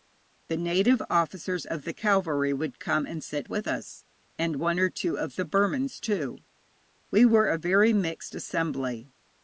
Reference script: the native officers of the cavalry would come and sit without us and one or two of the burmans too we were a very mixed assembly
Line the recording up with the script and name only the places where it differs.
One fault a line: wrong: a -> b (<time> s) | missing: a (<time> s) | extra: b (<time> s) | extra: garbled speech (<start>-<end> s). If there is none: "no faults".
wrong: without -> with (3.5 s)